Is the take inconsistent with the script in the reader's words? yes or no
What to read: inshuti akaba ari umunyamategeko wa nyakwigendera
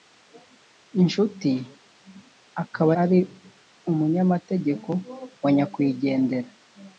no